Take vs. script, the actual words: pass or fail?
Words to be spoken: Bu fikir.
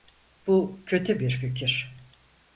fail